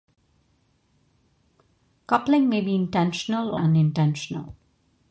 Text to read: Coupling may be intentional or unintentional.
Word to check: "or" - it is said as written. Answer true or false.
false